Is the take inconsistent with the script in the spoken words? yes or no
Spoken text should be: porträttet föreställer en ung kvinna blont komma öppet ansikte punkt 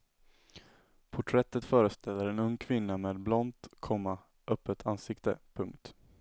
yes